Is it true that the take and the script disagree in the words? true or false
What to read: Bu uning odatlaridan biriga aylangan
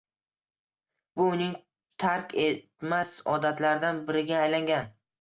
true